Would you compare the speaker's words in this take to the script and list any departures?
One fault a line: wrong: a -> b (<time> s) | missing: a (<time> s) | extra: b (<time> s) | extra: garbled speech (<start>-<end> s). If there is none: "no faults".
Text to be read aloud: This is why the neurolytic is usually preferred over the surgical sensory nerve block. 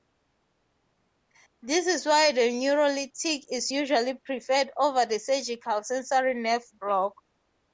no faults